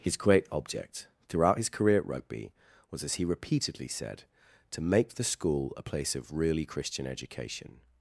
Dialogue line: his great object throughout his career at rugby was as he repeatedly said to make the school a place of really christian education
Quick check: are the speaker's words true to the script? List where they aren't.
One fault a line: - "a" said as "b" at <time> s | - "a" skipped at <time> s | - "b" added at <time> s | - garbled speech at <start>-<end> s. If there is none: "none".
none